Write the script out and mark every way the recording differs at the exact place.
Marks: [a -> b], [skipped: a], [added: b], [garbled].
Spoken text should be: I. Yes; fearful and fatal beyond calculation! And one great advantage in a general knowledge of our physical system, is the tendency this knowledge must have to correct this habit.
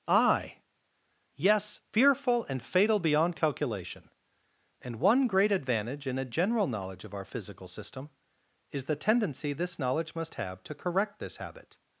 I. Yes; fearful and fatal beyond calculation! And one great advantage in a general knowledge of our physical system, is the tendency this knowledge must have to correct this habit.